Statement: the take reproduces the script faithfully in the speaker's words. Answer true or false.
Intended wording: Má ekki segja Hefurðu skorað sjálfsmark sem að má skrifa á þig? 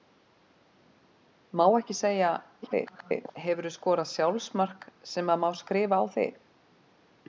false